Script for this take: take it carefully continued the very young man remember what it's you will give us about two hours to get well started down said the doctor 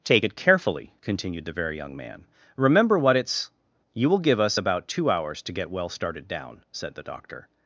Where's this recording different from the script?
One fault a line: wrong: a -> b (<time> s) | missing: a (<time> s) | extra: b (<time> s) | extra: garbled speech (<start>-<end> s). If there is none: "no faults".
no faults